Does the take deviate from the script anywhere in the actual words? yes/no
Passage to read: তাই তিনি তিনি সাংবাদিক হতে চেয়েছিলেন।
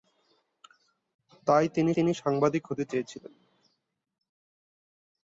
no